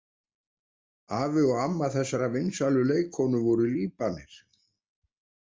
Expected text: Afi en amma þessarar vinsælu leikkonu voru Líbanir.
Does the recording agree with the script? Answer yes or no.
no